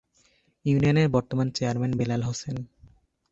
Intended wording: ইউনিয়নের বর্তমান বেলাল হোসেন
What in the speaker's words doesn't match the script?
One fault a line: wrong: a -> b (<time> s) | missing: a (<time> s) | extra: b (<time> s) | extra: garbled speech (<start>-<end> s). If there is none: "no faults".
extra: চেয়ারম্যান (1.5 s)